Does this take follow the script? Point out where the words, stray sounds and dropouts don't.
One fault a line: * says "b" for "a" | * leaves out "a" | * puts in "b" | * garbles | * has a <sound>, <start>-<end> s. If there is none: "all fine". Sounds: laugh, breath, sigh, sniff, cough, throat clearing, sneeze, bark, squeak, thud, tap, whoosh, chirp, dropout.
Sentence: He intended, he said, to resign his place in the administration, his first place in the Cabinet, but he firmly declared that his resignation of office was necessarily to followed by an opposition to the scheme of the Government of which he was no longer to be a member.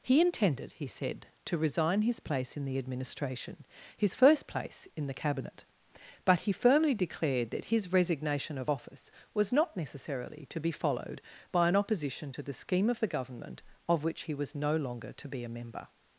* puts in "not"
* puts in "be"